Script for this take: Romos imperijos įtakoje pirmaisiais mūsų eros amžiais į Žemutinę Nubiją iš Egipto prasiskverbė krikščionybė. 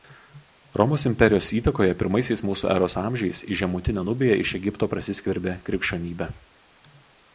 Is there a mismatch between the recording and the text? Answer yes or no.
no